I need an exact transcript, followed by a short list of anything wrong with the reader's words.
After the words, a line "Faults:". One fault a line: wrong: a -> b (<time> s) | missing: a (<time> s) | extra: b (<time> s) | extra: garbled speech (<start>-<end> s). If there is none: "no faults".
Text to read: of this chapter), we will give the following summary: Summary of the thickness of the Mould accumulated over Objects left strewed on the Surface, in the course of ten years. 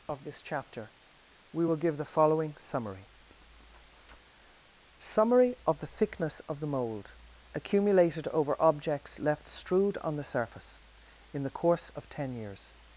of this chapter), we will give the following summary: Summary of the thickness of the Mould accumulated over Objects left strewed on the Surface, in the course of ten years.
Faults:
no faults